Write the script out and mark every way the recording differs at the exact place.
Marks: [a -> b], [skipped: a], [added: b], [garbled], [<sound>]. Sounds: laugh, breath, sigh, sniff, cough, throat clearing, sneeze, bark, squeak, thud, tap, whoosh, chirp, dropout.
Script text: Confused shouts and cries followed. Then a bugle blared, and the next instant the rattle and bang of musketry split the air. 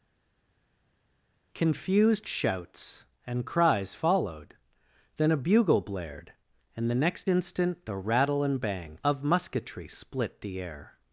Confused shouts and cries followed. Then a bugle blared, and the next instant the rattle and bang of musketry split the air.